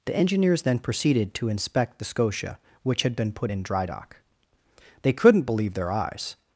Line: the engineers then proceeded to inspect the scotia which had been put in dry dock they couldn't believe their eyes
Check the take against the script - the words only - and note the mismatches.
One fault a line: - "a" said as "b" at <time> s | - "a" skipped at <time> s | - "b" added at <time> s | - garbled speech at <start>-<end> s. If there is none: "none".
none